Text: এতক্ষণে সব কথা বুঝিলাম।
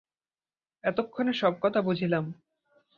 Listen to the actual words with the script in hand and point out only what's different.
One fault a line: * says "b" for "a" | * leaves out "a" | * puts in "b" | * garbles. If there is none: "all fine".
all fine